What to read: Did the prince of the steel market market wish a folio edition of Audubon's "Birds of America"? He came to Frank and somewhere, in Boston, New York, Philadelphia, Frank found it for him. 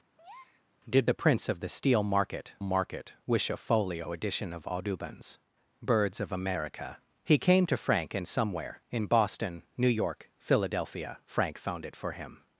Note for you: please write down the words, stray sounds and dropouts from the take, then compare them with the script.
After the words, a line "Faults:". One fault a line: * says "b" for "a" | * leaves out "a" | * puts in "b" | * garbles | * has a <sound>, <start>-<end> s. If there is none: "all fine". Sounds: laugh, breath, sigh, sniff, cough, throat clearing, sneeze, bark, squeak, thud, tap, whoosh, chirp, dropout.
Did the prince of the steel market market wish a folio edition of Audubon's "Birds of America"? He came to Frank and somewhere, in Boston, New York, Philadelphia, Frank found it for him.
Faults:
* has a breath, 0.2-0.7 s